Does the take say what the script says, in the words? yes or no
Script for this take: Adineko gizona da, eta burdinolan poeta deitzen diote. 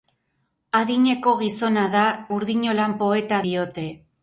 no